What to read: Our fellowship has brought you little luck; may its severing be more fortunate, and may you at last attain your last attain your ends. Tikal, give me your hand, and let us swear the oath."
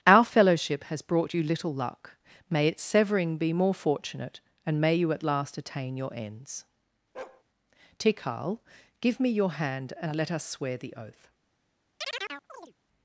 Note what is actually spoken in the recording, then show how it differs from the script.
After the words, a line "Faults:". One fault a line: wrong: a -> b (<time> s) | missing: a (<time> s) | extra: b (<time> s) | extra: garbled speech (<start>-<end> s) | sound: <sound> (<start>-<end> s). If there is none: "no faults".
Our fellowship has brought you little luck; may its severing be more fortunate, and may you at last attain your ends. Tikal, give me your hand, and let us swear the oath."
Faults:
missing: last attain your (6.1 s)
sound: bark (7.1-7.4 s)
sound: chirp (12.0-12.7 s)